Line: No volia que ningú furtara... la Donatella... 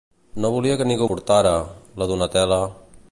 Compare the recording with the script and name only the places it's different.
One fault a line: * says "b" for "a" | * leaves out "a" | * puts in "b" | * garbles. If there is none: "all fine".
all fine